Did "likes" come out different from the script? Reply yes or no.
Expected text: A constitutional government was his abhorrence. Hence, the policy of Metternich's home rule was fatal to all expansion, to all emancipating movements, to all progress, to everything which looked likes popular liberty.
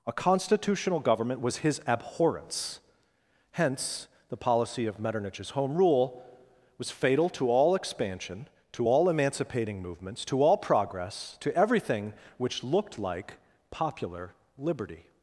yes